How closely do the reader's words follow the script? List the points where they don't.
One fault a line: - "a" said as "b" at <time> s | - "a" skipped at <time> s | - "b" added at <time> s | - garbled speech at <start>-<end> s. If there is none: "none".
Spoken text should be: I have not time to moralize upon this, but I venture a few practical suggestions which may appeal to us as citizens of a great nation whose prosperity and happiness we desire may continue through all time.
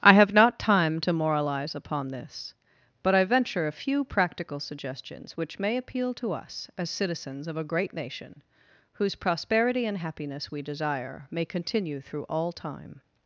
none